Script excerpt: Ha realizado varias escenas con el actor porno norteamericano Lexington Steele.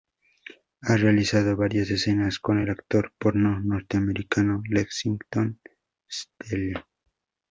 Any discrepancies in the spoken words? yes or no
no